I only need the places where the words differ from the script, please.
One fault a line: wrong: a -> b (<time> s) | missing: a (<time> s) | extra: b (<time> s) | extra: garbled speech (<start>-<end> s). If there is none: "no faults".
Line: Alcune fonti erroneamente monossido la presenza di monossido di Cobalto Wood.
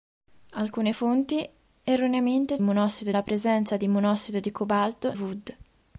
no faults